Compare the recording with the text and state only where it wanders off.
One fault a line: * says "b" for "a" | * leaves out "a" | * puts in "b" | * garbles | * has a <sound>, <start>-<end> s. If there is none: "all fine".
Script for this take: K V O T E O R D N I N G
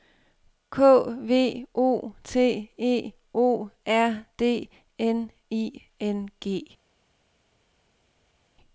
all fine